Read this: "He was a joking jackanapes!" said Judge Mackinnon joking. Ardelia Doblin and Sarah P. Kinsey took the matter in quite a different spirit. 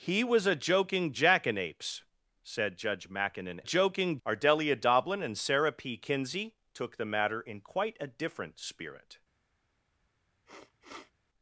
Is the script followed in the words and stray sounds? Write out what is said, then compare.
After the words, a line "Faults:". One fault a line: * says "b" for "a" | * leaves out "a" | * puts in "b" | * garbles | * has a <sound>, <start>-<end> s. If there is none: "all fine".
"He was a joking jackanapes!" said Judge Mackinnon joking. Ardelia Doblin and Sarah P. Kinsey took the matter in quite a different spirit.
Faults:
* has a sniff, 10.5-11.1 s